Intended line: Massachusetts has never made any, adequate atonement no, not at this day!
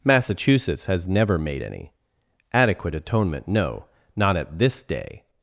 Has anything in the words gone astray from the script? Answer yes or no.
no